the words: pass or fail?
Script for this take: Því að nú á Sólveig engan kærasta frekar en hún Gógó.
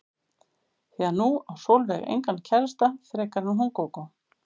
pass